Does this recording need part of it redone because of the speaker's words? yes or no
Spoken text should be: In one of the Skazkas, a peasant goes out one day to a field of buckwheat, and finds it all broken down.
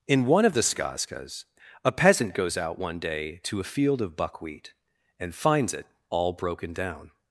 no